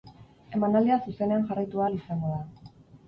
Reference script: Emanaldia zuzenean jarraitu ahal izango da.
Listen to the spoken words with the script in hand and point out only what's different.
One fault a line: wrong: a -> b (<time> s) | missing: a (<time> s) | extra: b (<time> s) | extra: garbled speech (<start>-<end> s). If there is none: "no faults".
no faults